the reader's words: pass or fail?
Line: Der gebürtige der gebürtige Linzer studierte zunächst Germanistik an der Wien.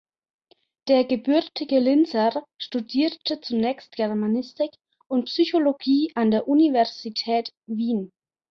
fail